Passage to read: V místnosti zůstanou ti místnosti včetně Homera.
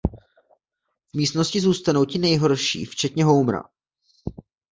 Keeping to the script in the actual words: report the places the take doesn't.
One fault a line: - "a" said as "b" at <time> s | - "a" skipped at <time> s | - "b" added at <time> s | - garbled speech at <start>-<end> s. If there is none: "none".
- "místnosti" said as "nejhorší" at 2.2 s